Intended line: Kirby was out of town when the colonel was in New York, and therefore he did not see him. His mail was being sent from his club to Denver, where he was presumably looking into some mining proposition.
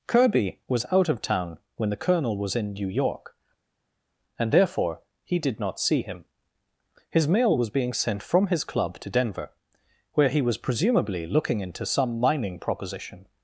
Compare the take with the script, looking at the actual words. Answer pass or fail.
pass